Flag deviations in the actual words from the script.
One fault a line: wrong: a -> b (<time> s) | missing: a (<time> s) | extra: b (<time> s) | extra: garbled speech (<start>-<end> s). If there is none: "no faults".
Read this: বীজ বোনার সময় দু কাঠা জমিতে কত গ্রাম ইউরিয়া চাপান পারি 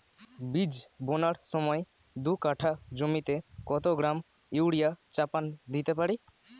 extra: দিতে (5.7 s)